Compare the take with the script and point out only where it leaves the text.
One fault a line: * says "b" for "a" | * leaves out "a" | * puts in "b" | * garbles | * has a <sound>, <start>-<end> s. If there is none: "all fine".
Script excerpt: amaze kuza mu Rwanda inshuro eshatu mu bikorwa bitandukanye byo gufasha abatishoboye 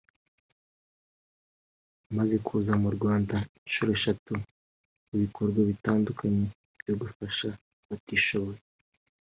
all fine